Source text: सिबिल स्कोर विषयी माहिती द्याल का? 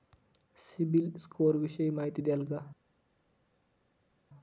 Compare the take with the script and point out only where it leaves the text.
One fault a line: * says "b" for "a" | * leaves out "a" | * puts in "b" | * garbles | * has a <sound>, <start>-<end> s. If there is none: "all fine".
all fine